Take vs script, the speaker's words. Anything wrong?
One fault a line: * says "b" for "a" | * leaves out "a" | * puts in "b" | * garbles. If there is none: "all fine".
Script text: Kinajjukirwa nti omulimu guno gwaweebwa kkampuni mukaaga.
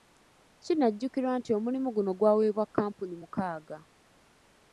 all fine